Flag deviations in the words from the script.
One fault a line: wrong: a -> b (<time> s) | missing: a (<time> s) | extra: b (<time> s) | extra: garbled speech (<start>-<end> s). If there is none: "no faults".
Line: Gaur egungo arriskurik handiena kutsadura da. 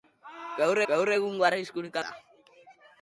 extra: gaur (0.9 s)
missing: handiena kutsadura (2.0 s)